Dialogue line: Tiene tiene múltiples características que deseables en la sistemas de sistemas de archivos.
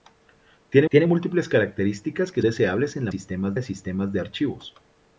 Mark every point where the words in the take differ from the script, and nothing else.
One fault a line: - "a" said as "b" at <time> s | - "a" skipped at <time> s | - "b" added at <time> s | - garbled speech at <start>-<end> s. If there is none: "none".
none